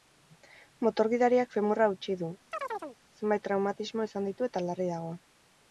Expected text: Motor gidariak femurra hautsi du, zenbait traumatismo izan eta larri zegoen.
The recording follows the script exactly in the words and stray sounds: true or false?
false